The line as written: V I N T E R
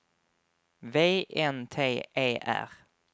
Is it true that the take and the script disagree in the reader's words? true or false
true